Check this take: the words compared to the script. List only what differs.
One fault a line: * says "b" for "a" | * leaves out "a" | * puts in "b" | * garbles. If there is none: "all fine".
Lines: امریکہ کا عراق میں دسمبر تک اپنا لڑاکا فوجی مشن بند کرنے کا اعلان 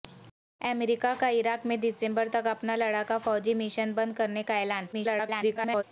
* garbles